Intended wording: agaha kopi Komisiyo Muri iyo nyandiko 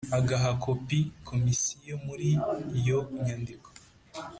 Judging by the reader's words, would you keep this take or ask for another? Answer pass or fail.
pass